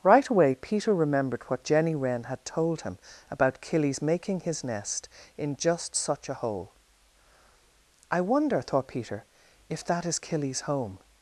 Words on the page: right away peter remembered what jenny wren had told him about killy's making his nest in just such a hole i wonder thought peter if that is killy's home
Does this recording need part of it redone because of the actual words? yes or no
no